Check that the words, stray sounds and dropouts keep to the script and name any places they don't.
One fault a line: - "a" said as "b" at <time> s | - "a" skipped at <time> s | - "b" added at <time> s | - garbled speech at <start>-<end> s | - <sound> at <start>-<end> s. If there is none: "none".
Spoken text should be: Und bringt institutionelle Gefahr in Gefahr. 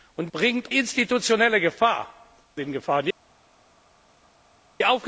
none